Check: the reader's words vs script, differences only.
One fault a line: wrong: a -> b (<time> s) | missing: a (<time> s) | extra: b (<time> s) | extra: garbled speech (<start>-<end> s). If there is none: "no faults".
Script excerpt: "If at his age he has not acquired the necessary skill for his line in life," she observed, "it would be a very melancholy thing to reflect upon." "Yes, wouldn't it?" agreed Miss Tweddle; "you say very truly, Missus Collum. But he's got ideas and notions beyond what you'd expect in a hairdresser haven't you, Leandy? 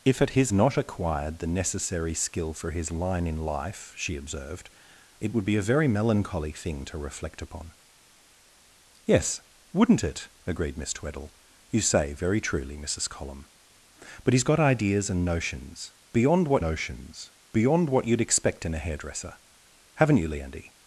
missing: age he has (0.5 s)
extra: notions beyond what (16.6 s)